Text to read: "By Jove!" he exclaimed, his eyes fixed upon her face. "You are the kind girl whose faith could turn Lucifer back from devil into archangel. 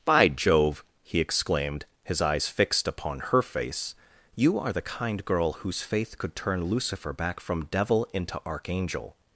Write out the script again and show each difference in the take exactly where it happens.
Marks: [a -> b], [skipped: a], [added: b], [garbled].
"By Jove!" he exclaimed, his eyes fixed upon her face. "You are the kind girl whose faith could turn Lucifer back from devil into archangel.